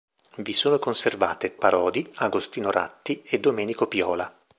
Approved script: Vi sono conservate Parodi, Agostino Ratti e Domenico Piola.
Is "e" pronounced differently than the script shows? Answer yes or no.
no